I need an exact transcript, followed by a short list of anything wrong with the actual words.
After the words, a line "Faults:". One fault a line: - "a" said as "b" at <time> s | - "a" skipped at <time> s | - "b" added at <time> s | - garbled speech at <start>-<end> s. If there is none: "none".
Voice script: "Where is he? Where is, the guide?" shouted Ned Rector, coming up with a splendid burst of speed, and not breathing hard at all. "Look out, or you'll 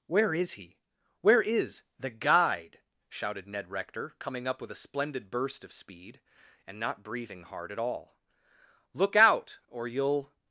"Where is he? Where is, the guide?" shouted Ned Rector, coming up with a splendid burst of speed, and not breathing hard at all. "Look out, or you'll
Faults:
none